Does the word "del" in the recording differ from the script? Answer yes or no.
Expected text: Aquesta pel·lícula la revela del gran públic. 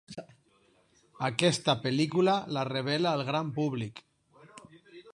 yes